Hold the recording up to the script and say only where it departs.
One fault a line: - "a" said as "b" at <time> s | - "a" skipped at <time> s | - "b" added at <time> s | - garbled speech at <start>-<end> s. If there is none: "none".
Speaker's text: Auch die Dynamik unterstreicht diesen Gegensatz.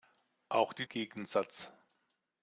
- "Dynamik unterstreicht diesen" skipped at 0.9 s